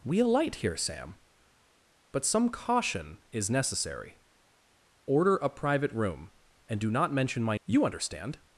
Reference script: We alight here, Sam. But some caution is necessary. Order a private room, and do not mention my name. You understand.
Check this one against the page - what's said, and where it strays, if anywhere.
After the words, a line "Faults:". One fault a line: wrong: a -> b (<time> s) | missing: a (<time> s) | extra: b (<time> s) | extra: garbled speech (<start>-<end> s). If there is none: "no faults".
We alight here, Sam. But some caution is necessary. Order a private room, and do not mention my. You understand.
Faults:
missing: name (7.6 s)